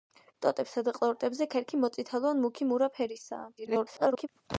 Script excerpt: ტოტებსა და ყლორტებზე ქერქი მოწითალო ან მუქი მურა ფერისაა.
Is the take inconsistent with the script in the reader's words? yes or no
yes